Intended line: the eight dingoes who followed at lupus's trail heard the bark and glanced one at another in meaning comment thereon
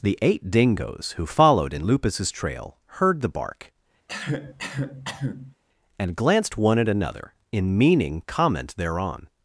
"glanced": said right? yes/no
yes